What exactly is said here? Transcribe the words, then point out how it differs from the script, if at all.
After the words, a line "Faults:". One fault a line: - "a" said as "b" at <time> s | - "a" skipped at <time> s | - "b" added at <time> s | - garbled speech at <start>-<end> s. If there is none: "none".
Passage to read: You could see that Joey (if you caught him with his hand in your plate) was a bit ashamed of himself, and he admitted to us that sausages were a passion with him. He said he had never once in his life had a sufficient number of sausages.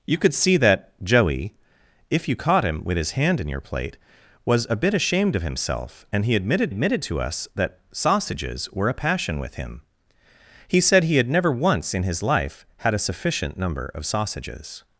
You could see that Joey (if you caught him with his hand in your plate) was a bit ashamed of himself, and he admitted admitted to us that sausages were a passion with him. He said he had never once in his life had a sufficient number of sausages.
Faults:
- "admitted" added at 6.7 s